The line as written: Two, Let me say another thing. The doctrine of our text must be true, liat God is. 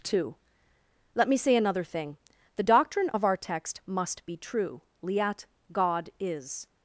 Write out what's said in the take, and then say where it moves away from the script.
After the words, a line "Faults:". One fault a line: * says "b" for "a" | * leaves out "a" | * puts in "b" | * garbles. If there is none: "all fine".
Two, Let me say another thing. The doctrine of our text must be true, liat God is.
Faults:
all fine